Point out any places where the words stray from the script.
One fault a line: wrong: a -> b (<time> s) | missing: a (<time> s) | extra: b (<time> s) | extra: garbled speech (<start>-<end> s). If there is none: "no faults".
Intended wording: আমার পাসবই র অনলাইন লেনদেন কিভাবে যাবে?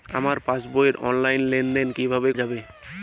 no faults